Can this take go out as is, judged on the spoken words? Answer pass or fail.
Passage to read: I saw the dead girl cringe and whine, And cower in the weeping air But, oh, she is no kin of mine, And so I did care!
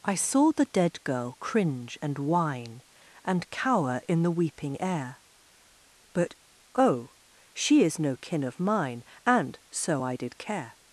pass